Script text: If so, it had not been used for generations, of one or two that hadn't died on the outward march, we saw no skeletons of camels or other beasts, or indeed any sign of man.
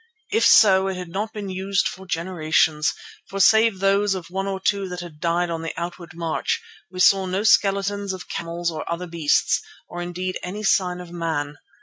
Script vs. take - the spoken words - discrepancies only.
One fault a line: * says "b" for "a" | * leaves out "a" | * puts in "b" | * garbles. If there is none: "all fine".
* puts in "for save those"
* says "had" for "hadn't"